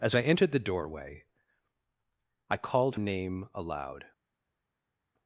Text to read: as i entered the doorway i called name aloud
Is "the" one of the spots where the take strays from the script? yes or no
no